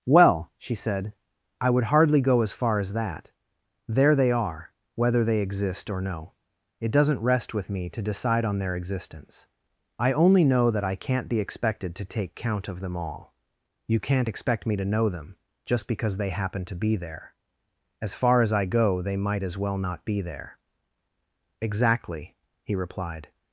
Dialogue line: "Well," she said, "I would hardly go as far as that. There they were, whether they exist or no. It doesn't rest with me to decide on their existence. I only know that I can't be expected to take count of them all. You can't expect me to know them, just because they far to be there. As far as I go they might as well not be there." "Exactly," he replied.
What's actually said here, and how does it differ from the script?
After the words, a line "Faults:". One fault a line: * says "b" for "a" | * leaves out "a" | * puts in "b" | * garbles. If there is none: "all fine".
"Well," she said, "I would hardly go as far as that. There they are, whether they exist or no. It doesn't rest with me to decide on their existence. I only know that I can't be expected to take count of them all. You can't expect me to know them, just because they happen to be there. As far as I go they might as well not be there." "Exactly," he replied.
Faults:
* says "are" for "were"
* says "happen" for "far"